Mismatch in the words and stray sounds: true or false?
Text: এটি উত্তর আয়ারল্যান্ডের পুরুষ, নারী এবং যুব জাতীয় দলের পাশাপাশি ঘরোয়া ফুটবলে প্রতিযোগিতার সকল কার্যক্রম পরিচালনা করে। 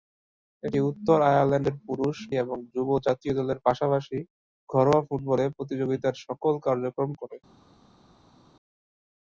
true